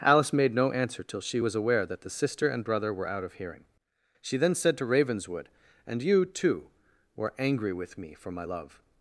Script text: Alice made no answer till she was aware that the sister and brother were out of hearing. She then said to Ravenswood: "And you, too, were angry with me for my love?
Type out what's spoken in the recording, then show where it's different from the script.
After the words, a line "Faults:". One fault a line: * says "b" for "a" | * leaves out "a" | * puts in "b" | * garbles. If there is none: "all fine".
Alice made no answer till she was aware that the sister and brother were out of hearing. She then said to Ravenswood: "And you, too, were angry with me for my love?
Faults:
all fine